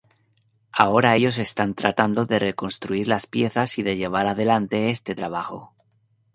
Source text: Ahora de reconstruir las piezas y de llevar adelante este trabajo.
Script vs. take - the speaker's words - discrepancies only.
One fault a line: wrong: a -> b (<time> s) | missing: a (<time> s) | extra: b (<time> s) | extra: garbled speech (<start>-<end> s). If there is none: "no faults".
extra: ellos están tratando (1.1 s)